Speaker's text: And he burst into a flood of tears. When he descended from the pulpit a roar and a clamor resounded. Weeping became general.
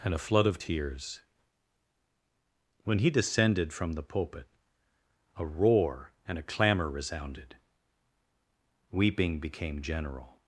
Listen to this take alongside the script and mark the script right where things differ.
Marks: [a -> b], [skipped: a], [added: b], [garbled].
And [skipped: he burst into] a flood of tears. When he descended from the pulpit a roar and a clamor resounded. Weeping became general.